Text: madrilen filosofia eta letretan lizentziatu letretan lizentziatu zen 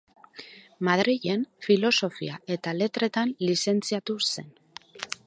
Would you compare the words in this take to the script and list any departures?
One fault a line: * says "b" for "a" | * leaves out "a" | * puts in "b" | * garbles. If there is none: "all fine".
* leaves out "letretan lizentziatu"